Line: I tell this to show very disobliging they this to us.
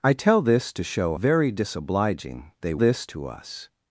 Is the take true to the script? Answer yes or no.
yes